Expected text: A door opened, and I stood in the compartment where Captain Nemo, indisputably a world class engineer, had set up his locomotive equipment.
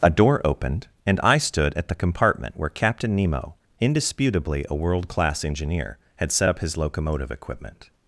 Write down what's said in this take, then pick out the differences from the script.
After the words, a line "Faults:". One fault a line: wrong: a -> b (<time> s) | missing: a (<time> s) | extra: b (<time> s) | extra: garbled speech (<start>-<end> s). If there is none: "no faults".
A door opened, and I stood at the compartment where Captain Nemo, indisputably a world class engineer, had set up his locomotive equipment.
Faults:
wrong: in -> at (1.8 s)